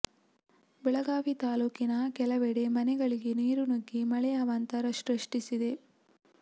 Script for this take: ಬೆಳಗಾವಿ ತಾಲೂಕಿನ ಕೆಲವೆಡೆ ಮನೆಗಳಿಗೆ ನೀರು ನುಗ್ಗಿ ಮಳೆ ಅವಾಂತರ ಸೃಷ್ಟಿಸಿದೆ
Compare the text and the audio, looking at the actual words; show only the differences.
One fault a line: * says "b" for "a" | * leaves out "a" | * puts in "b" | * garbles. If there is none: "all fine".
all fine